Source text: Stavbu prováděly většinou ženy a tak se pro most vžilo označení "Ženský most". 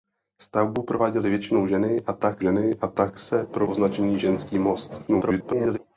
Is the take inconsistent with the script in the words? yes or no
yes